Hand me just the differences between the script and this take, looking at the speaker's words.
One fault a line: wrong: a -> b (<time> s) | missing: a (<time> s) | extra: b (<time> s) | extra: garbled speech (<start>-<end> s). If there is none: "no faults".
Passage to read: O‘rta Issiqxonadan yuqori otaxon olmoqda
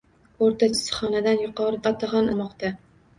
no faults